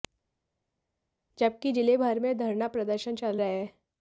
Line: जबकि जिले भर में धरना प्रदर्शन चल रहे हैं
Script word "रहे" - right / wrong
right